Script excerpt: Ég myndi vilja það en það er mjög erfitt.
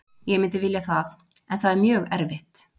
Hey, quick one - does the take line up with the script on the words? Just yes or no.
yes